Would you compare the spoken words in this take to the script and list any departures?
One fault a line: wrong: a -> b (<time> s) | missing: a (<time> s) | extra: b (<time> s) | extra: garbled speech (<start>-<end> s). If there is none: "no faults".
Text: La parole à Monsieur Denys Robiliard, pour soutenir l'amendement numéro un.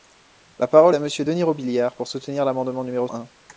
no faults